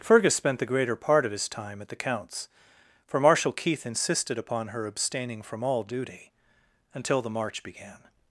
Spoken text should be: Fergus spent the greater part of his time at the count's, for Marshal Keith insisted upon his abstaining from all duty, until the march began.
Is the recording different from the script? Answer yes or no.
yes